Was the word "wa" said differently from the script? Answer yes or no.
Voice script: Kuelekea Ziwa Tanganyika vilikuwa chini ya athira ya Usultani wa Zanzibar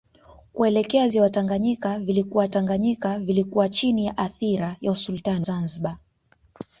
yes